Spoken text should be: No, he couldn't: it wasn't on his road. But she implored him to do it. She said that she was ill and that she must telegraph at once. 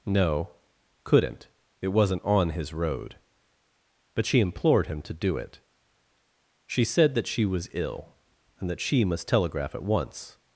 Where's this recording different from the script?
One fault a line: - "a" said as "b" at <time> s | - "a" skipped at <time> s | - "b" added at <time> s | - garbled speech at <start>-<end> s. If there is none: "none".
- "he" skipped at 0.5 s